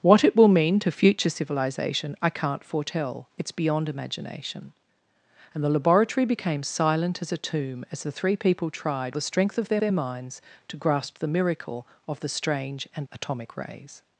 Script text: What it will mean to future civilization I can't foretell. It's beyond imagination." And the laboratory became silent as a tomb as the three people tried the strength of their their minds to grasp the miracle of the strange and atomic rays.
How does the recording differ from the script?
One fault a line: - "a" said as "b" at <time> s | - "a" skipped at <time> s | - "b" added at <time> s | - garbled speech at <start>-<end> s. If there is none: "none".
none